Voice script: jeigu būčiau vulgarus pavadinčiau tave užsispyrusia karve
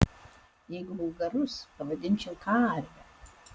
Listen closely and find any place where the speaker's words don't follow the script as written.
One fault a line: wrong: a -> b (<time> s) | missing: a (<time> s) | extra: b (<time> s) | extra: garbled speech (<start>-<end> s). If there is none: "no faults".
missing: būčiau (0.9 s)
missing: tave užsispyrusia (2.3 s)